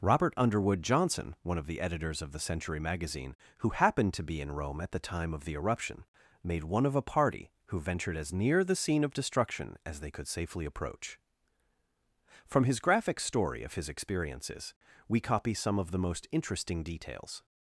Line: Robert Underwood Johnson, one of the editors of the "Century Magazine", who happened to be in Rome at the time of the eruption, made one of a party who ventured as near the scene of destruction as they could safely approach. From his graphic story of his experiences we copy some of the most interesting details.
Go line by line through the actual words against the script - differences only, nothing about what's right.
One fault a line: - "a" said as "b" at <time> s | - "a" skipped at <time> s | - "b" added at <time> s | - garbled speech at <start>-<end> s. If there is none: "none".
none